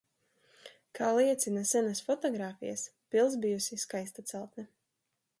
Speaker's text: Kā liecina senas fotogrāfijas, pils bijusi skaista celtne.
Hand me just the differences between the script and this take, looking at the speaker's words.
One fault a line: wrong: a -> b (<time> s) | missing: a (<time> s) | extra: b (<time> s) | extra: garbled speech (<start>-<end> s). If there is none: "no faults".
no faults